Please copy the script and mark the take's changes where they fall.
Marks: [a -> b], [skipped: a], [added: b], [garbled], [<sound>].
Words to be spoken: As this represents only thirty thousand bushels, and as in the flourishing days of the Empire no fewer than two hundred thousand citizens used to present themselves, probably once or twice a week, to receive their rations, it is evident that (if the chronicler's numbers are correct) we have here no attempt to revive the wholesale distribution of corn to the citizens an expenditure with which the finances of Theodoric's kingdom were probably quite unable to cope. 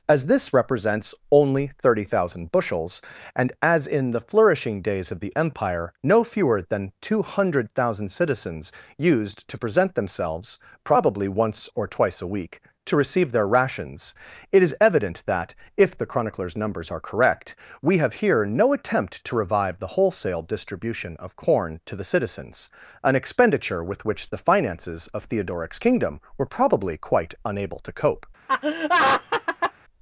As this represents only thirty thousand bushels, and as in the flourishing days of the Empire no fewer than two hundred thousand citizens used to present themselves, probably once or twice a week, to receive their rations, it is evident that (if the chronicler's numbers are correct) we have here no attempt to revive the wholesale distribution of corn to the citizens an expenditure with which the finances of Theodoric's kingdom were probably quite unable to cope. [laugh]